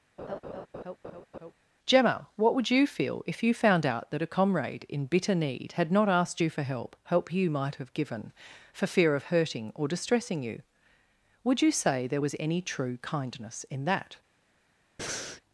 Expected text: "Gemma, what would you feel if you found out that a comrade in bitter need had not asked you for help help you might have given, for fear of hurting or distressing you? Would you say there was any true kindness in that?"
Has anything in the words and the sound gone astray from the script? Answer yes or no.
yes